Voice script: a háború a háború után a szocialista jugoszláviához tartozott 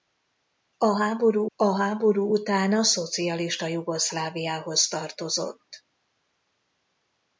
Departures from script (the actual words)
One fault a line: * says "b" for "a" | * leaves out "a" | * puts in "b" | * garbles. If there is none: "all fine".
all fine